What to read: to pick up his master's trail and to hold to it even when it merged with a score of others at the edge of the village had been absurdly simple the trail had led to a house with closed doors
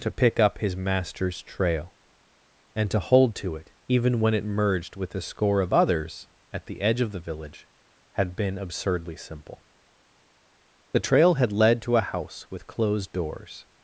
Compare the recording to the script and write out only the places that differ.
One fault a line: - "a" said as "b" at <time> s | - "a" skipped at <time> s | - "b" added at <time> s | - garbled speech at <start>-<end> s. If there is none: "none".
none